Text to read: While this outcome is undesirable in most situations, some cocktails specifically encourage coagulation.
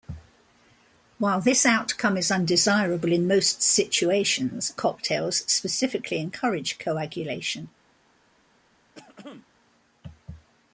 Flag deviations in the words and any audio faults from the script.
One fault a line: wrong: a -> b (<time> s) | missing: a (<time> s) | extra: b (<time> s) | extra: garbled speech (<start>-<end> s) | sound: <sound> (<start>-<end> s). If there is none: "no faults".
missing: some (4.7 s)
sound: throat clearing (8.9-9.5 s)